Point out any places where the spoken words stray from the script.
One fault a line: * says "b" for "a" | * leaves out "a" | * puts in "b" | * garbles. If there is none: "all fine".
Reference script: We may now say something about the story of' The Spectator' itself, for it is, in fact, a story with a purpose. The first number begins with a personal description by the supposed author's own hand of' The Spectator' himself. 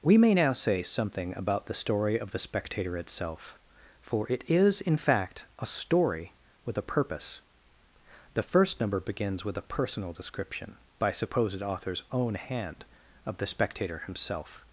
* leaves out "the"